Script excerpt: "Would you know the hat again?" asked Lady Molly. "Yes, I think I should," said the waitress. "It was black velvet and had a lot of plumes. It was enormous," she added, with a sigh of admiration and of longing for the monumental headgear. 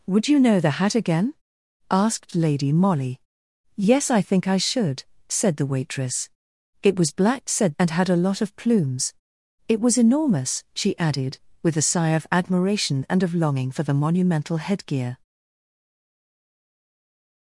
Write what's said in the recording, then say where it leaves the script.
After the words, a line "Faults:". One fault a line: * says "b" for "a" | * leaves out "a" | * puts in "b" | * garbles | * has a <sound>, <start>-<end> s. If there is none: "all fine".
"Would you know the hat again?" asked Lady Molly. "Yes, I think I should," said the waitress. "It was black said and had a lot of plumes. It was enormous," she added, with a sigh of admiration and of longing for the monumental headgear.
Faults:
* says "said" for "velvet"